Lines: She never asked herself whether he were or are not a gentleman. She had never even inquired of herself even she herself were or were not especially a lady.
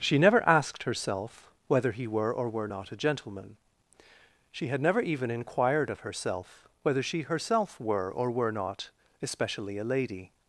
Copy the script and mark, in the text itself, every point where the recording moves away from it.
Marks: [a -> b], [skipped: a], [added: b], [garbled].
She never asked herself whether he were or [are -> were] not a gentleman. She had never even inquired of herself [even -> whether] she herself were or were not especially a lady.